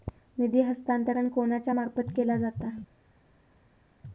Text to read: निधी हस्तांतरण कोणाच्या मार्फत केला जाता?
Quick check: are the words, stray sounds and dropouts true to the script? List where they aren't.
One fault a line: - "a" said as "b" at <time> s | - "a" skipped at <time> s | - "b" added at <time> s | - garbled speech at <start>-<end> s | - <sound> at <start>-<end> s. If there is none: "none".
none